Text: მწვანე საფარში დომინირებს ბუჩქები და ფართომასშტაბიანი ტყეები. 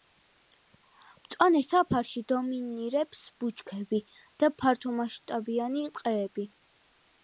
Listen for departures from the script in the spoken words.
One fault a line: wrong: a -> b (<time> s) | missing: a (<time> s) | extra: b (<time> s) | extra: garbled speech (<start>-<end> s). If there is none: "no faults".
no faults